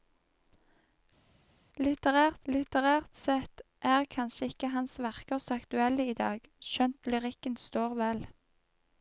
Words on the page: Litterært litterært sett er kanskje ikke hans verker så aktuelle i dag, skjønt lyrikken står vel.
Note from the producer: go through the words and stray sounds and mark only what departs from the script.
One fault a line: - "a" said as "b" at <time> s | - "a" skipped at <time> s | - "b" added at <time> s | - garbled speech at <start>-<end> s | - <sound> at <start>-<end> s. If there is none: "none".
none